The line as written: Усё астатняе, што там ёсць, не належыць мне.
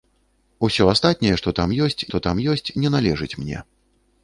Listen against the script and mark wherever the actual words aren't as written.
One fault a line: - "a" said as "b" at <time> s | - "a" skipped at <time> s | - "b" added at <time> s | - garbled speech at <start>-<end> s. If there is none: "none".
- "што там ёсць" added at 2.1 s